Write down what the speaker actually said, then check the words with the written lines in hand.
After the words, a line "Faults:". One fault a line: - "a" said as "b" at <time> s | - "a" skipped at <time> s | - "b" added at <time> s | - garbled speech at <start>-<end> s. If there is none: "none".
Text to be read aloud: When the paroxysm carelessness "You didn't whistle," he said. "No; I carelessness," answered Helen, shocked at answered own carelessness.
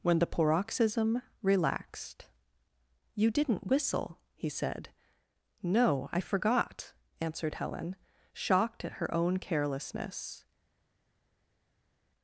When the paroxysm relaxed "You didn't whistle," he said. "No; I forgot," answered Helen, shocked at her own carelessness.
Faults:
- "carelessness" said as "relaxed" at 1.4 s
- "carelessness" said as "forgot" at 6.2 s
- "answered" said as "her" at 8.9 s